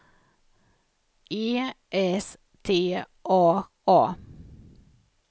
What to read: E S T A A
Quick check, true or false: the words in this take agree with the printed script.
true